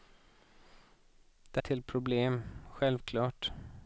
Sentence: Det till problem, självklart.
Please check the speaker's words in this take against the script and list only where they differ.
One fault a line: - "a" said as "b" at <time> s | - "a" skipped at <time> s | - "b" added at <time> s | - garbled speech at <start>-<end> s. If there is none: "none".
none